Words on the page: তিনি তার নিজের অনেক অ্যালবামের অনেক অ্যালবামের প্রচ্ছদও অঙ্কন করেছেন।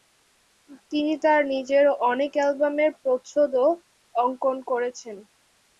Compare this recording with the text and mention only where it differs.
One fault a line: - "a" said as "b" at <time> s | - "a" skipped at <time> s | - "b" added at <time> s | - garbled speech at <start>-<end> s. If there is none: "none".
- "অনেক অ্যালবামের" skipped at 2.9 s